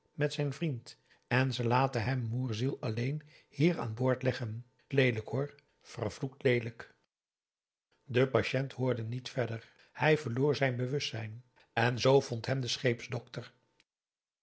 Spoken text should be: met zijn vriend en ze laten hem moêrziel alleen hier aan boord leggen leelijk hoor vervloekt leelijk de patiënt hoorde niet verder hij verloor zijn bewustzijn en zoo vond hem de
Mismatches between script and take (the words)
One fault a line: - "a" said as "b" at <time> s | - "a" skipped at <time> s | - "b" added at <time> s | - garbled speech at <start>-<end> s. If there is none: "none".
none